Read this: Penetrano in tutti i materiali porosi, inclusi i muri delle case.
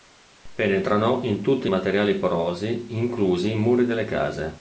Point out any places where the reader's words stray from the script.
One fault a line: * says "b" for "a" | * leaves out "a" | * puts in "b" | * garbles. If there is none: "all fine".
all fine